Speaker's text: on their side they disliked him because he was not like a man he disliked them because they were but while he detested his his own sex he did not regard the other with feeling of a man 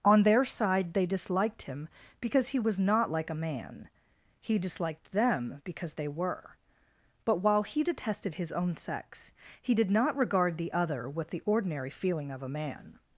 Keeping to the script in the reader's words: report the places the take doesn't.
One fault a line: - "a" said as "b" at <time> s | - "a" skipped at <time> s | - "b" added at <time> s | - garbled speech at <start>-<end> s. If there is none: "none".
- "his" skipped at 8.5 s
- "the ordinary" added at 11.3 s